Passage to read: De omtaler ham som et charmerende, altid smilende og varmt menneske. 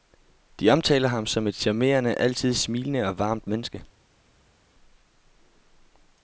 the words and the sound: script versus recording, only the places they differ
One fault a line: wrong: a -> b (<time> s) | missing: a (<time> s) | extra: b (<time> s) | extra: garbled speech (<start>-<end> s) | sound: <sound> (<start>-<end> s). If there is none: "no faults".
no faults